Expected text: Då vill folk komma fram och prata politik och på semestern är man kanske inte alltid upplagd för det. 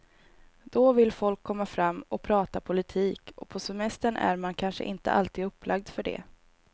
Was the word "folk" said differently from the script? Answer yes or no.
no